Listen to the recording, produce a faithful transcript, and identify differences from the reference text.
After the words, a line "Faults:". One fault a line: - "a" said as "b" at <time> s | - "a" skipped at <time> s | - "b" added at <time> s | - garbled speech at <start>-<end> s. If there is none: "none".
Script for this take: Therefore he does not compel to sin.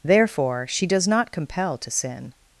Therefore she does not compel to sin.
Faults:
- "he" said as "she" at 0.7 s